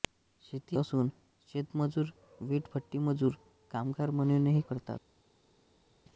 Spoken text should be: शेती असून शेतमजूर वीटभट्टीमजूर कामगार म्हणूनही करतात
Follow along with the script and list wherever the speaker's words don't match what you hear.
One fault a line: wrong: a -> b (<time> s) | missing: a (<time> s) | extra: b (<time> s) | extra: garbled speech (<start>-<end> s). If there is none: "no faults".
no faults